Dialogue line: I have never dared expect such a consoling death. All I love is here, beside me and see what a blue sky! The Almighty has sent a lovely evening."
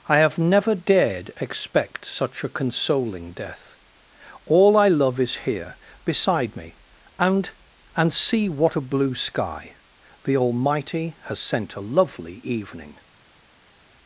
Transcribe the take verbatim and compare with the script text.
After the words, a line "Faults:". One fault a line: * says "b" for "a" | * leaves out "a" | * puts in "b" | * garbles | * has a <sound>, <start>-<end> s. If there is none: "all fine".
I have never dared expect such a consoling death. All I love is here, beside me and and see what a blue sky! The Almighty has sent a lovely evening."
Faults:
* puts in "and"